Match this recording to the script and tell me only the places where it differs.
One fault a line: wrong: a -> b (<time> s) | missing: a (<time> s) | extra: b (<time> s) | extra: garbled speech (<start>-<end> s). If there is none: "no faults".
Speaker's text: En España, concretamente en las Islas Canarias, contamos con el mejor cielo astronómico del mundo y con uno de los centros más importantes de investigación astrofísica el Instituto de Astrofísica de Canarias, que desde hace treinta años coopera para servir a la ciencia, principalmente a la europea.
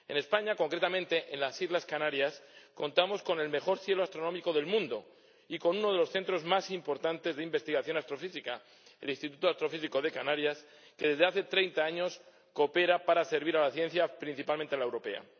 no faults